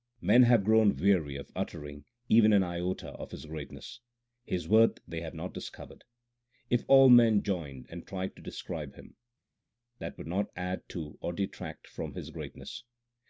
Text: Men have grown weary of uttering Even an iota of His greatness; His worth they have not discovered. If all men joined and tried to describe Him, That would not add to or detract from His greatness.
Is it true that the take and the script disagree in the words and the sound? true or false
false